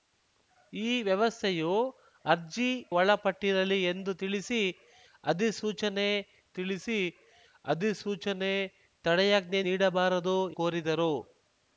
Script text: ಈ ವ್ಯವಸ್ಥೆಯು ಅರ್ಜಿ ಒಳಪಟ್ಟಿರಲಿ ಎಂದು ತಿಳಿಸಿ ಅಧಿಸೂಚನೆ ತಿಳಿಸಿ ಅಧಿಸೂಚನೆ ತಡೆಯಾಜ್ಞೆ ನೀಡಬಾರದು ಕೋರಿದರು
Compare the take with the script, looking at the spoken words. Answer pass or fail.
pass